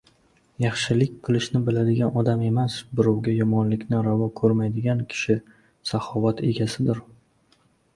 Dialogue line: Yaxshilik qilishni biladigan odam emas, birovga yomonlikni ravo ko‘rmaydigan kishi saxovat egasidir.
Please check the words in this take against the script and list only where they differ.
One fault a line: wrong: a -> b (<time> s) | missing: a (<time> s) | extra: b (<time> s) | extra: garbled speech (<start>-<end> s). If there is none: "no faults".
no faults